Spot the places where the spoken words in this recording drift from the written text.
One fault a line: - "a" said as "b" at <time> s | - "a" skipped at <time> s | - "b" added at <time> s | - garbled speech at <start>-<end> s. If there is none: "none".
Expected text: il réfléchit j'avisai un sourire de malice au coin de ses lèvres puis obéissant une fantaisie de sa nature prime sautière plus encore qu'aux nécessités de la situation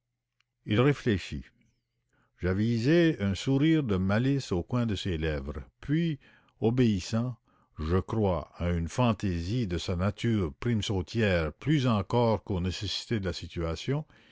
- "je crois à" added at 7.8 s